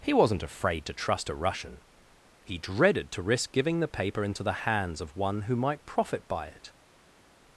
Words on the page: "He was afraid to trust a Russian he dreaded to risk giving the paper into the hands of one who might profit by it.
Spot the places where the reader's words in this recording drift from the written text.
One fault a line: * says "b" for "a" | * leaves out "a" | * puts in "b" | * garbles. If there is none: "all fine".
* says "wasn't" for "was"